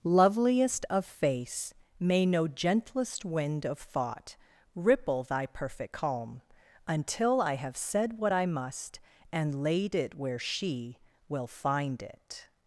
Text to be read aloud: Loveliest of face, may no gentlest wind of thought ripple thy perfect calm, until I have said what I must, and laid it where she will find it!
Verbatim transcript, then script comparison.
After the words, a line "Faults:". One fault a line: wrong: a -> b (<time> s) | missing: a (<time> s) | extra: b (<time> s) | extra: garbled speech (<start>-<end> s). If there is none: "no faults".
Loveliest of face, may no gentlest wind of thought ripple thy perfect calm, until I have said what I must, and laid it where she will find it!
Faults:
no faults